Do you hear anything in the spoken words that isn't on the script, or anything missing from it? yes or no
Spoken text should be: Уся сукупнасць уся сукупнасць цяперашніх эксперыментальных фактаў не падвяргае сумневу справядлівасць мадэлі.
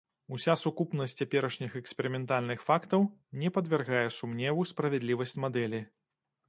yes